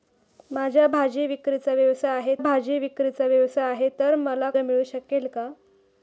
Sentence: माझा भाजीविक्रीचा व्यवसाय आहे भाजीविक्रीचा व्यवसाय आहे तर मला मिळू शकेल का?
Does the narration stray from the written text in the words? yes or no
no